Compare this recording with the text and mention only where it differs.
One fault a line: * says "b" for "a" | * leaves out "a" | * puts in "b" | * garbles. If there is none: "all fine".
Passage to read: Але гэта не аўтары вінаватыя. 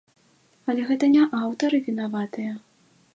all fine